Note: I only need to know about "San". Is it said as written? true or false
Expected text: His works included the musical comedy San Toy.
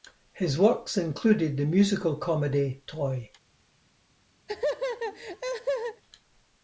false